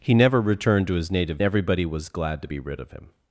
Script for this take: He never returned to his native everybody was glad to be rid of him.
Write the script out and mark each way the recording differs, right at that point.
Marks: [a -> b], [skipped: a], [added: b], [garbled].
He never returned to his native everybody was glad to be rid of him.